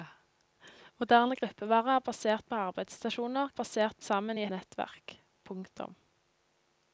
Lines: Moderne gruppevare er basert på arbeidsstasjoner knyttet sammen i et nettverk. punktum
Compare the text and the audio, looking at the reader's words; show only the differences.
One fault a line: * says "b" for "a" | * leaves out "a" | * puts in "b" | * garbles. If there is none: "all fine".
* says "basert" for "knyttet"
* leaves out "et"